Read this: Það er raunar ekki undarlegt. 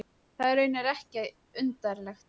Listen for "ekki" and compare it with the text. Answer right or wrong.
right